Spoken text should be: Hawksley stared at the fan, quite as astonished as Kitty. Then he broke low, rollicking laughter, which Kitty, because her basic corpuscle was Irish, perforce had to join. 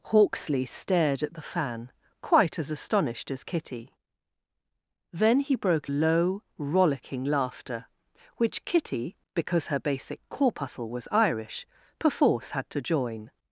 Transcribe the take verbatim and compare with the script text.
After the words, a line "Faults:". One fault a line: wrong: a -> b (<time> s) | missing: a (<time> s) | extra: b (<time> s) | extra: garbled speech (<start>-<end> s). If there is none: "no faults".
Hawksley stared at the fan, quite as astonished as Kitty. Then he broke low, rollicking laughter, which Kitty, because her basic corpuscle was Irish, perforce had to join.
Faults:
no faults